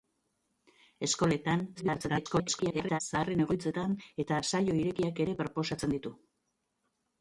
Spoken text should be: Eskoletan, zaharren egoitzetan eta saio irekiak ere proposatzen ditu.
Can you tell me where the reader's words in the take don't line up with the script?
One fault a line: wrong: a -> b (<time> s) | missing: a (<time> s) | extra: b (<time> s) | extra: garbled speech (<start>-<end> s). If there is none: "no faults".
extra: garbled speech (1.8-3.0 s)